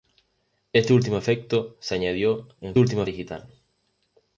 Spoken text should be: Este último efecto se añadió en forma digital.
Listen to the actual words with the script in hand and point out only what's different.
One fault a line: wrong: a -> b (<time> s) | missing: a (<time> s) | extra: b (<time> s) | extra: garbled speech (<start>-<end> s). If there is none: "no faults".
wrong: forma -> último (2.8 s)